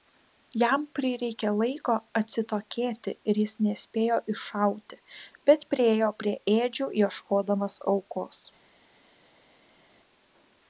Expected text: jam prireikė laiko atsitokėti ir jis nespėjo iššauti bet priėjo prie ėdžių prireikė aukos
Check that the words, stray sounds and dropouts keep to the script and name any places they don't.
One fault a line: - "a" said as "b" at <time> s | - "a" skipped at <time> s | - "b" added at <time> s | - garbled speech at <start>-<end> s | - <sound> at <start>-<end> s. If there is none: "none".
- "prireikė" said as "ieškodamas" at 7.0 s